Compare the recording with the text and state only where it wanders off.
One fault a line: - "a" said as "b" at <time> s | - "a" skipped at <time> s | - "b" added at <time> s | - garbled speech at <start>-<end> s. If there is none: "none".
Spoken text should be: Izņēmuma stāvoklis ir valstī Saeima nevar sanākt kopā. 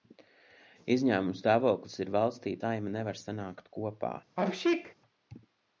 none